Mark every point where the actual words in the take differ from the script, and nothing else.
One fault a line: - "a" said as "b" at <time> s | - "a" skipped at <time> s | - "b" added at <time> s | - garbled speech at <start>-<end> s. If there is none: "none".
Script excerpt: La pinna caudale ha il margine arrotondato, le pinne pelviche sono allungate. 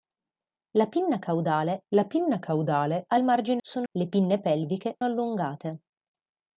- "la pinna caudale" added at 1.9 s
- "arrotondato" said as "sono" at 3.6 s
- "sono" skipped at 5.0 s